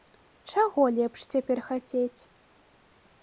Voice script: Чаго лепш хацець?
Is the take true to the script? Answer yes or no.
no